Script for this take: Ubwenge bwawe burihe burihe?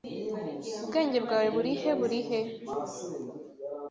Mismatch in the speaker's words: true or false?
false